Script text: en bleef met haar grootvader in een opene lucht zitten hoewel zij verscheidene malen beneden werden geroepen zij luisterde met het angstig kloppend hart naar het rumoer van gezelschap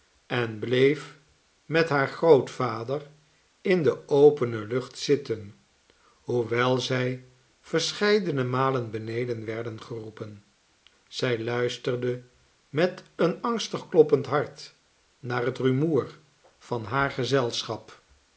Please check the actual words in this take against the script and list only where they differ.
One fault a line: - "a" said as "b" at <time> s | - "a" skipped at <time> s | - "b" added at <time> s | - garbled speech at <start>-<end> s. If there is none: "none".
- "een" said as "de" at 3.8 s
- "het" said as "een" at 13.2 s
- "haar" added at 16.8 s